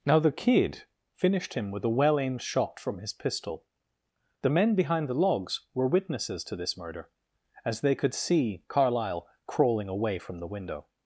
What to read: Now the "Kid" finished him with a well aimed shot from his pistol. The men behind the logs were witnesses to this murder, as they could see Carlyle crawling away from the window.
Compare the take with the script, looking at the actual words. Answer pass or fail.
pass